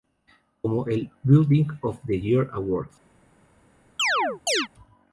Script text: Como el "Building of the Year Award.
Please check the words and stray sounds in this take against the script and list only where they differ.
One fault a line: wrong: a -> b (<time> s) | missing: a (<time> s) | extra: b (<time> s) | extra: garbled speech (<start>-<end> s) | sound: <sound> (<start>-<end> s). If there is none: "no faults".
sound: chirp (4.0-4.7 s)